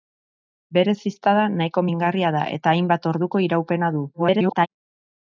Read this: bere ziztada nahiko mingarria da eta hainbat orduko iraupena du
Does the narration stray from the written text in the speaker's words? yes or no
yes